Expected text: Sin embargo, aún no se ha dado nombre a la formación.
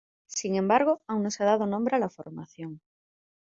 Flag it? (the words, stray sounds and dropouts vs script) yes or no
no